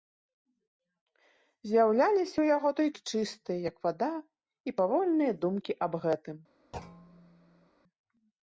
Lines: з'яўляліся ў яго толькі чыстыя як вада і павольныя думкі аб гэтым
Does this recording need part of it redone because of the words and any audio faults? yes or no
yes